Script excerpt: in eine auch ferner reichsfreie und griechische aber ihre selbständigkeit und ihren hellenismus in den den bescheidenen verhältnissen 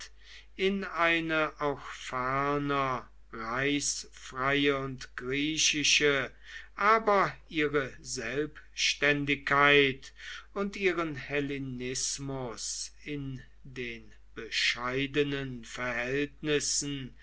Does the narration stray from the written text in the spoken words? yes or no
yes